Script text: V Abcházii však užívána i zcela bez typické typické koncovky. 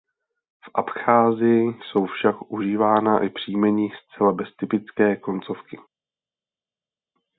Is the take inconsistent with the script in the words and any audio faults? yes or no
yes